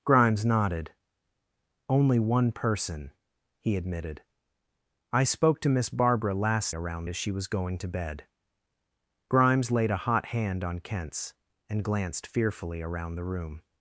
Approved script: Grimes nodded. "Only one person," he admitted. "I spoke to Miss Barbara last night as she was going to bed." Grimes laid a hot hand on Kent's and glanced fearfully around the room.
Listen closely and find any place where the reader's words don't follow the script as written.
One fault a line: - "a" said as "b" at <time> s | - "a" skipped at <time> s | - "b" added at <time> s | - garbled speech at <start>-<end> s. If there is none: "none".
- "night" said as "around" at 6.7 s